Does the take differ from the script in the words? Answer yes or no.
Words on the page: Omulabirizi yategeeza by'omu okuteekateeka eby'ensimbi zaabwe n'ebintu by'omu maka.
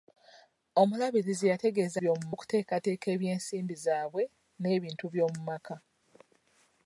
no